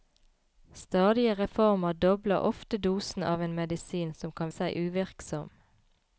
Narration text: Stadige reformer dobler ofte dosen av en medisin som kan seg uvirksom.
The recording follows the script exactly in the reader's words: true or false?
true